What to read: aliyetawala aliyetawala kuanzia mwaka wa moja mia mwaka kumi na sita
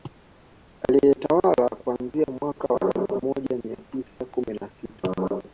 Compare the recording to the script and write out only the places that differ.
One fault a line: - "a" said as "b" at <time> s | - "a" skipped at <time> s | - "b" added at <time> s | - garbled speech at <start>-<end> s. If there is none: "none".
- "aliyetawala" skipped at 1.7 s
- "elfu" added at 2.8 s
- "mwaka" said as "tisa" at 3.9 s